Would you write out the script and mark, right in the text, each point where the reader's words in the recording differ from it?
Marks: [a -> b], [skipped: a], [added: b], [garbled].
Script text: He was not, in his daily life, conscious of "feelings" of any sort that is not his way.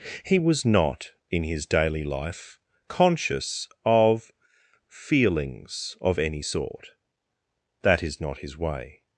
He was not, in his daily life, conscious of "feelings" of any sort that is not his way.